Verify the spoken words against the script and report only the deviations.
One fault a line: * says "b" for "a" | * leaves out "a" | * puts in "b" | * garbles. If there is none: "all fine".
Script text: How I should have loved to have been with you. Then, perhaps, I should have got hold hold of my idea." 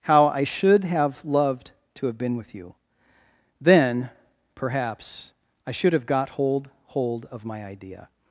all fine